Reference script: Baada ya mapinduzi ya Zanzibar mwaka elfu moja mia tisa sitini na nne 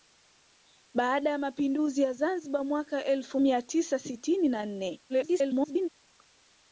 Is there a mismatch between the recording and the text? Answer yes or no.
yes